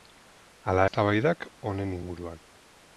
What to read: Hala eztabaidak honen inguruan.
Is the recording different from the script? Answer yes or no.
no